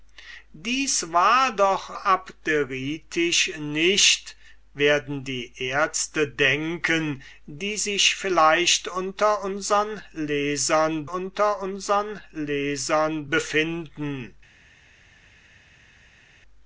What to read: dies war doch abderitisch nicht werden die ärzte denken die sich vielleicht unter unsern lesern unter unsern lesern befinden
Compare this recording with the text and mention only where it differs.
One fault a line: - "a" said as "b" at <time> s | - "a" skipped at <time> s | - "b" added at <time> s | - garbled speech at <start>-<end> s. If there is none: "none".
none